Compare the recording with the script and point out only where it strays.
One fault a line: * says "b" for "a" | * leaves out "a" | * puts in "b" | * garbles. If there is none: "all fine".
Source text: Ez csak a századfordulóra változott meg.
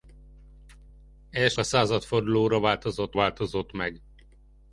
* leaves out "csak"
* puts in "változott"